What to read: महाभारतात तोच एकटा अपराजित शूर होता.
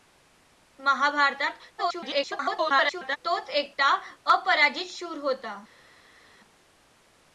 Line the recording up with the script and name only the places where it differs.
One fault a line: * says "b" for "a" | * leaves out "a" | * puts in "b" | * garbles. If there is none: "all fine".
* garbles